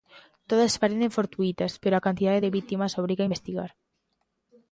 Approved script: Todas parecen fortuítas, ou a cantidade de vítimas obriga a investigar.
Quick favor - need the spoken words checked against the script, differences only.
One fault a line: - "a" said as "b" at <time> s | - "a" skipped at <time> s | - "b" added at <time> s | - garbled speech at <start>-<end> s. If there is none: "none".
- "ou" said as "pero" at 1.8 s